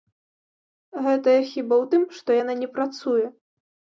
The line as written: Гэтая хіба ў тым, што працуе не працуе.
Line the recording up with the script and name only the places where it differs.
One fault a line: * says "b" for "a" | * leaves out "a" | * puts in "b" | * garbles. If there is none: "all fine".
* says "яна" for "працуе"